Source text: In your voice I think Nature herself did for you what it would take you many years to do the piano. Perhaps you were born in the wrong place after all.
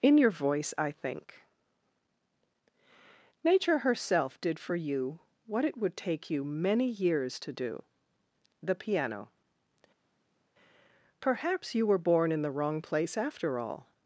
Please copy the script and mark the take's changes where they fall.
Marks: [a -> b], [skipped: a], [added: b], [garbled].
In your voice I think Nature herself did for you what it would take you many years to do the piano. Perhaps you were born in the wrong place after all.